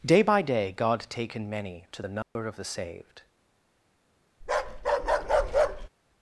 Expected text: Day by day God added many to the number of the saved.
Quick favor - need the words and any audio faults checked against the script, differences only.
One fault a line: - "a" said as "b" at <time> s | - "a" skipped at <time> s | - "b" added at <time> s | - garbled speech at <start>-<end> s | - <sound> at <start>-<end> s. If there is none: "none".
- "added" said as "taken" at 1.1 s
- dropout at 2.2-2.4 s
- bark at 4.4-5.9 s